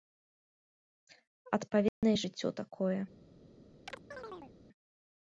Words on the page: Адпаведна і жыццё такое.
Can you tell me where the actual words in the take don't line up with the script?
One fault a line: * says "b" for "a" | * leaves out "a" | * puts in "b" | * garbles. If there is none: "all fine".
all fine